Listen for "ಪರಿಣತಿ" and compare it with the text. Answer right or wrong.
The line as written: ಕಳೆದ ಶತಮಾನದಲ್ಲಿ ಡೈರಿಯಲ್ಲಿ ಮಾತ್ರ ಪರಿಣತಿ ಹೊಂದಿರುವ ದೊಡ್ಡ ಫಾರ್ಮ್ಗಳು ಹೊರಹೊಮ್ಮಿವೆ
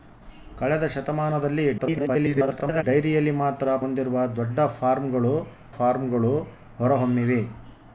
wrong